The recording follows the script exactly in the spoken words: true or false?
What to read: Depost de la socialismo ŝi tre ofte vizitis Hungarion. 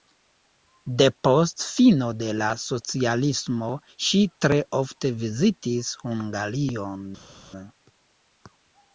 false